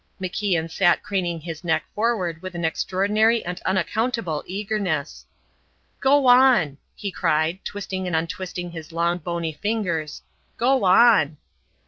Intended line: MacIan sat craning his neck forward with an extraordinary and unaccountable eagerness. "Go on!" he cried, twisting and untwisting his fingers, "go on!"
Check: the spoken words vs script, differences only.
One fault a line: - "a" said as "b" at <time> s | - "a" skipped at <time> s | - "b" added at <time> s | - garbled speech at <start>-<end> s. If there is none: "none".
- "long bony" added at 8.9 s